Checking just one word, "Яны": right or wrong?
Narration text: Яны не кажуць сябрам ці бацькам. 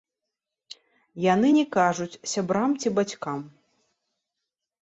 right